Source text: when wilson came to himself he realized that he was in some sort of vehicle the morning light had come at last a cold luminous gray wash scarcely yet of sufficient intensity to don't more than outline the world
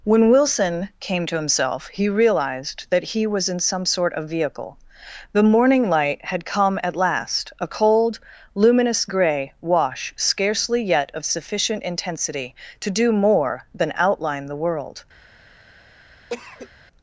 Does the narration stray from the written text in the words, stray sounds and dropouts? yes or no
yes